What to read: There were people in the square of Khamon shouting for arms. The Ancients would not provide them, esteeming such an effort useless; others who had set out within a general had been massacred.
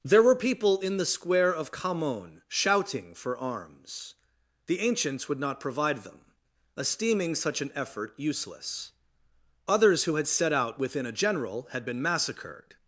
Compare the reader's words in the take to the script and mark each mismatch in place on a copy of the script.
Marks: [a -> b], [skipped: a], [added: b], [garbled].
There were people in the square of Khamon shouting for arms. The Ancients would not provide them, esteeming such an effort useless; others who had set out within a general had been massacred.